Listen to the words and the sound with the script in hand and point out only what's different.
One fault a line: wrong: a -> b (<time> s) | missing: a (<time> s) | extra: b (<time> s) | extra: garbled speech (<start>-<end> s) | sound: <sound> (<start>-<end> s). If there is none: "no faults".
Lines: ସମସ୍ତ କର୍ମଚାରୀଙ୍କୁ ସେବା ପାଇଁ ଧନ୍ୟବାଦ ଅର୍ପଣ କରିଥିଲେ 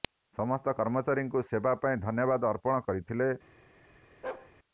sound: bark (4.2-4.5 s)